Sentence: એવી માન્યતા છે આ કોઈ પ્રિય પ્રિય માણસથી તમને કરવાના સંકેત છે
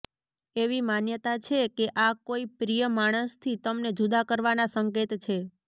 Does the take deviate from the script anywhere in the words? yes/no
yes